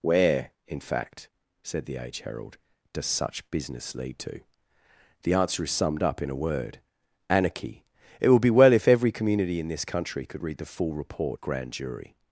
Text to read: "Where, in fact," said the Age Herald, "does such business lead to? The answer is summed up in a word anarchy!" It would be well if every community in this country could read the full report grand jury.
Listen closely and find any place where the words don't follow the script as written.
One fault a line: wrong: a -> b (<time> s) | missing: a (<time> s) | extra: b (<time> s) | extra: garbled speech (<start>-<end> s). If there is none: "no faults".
no faults